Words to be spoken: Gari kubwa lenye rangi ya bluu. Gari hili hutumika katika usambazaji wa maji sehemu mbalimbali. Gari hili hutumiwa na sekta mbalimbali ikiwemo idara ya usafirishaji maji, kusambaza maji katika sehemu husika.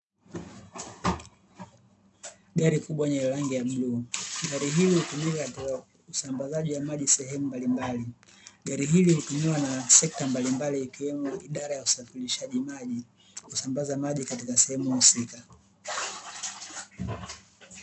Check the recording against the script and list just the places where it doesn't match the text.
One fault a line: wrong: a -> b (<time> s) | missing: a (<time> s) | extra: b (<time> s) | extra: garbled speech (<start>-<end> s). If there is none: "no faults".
no faults